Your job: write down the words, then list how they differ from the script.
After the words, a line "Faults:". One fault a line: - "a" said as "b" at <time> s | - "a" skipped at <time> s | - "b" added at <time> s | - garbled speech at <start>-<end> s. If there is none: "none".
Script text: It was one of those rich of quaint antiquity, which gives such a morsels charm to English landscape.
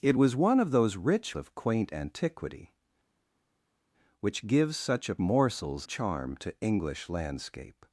It was one of those rich of quaint antiquity, which gives such a morsels charm to English landscape.
Faults:
none